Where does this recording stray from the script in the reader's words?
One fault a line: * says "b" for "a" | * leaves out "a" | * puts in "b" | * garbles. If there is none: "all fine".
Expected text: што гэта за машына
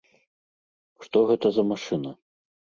all fine